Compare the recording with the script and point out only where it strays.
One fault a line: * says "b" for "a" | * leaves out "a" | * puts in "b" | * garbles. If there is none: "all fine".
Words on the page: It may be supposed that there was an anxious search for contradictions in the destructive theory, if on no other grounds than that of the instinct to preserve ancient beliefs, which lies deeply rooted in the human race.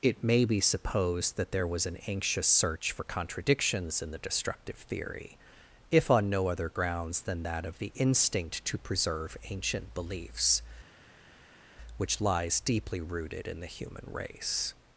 all fine